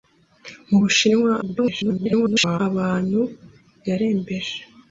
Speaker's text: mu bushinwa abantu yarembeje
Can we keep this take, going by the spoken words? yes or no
no